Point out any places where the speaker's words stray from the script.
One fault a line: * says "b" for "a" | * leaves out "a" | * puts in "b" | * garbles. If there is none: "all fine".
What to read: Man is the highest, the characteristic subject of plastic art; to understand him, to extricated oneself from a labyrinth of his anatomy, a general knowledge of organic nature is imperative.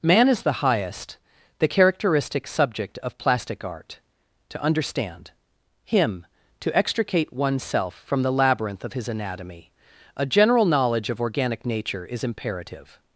* says "extricate" for "extricated"
* says "the" for "a"